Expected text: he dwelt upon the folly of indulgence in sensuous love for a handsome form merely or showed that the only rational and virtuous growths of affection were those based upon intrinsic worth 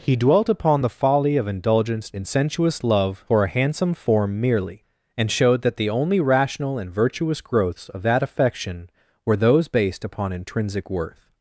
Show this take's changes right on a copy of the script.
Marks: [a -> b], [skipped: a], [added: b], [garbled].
he dwelt upon the folly of indulgence in sensuous love for a handsome form merely [or -> and] showed that the only rational and virtuous growths of [added: that] affection were those based upon intrinsic worth